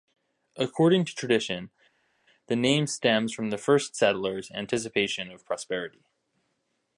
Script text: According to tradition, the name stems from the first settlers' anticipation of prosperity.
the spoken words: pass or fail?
pass